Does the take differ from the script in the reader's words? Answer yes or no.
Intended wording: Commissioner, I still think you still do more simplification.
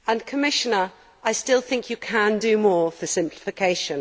yes